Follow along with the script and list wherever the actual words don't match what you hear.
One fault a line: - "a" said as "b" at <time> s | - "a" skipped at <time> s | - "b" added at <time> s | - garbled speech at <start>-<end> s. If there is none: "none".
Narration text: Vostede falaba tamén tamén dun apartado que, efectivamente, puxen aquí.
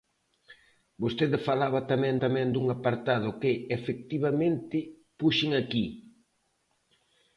none